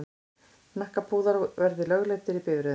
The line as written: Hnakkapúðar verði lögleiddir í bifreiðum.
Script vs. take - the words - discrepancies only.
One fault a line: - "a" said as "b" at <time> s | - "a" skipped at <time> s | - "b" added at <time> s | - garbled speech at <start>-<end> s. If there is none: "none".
none